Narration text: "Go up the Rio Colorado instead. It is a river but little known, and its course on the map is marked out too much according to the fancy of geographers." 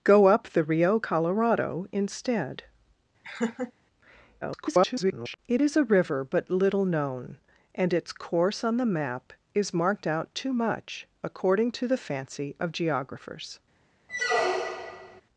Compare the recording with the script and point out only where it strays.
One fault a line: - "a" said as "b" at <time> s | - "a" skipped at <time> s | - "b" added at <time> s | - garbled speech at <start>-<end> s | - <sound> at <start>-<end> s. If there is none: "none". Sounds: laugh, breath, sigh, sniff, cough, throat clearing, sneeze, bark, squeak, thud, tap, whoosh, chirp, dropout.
- laugh at 3.2-3.7 s
- garbled speech at 4.4-5.4 s
- squeak at 14.1-15.2 s